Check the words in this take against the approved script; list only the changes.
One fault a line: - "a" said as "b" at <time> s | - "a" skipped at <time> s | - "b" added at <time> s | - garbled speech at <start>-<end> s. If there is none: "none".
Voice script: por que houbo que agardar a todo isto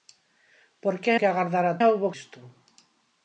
- "houbo" skipped at 1.1 s
- "todo" said as "houbo" at 1.9 s